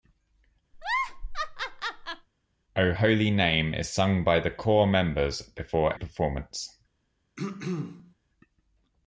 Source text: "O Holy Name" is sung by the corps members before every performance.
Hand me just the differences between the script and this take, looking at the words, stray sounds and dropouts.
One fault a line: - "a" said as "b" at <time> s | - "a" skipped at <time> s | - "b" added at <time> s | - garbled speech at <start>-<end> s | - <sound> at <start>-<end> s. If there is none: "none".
- laugh at 0.7-2.3 s
- "every" skipped at 5.9 s
- throat clearing at 7.4-8.1 s